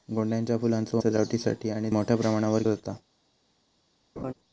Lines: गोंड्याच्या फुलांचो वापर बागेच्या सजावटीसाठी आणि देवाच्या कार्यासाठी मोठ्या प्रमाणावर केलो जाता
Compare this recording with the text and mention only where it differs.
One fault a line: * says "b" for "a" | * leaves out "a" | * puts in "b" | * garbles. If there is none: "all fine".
* leaves out "वापर बागेच्या"
* leaves out "देवाच्या कार्यासाठी"
* leaves out "केलो"